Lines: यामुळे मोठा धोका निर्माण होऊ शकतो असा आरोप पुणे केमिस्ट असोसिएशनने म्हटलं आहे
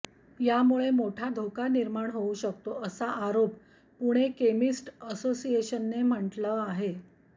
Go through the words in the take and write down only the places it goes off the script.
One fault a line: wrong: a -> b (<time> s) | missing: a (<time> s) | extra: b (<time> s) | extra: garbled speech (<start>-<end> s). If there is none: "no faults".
no faults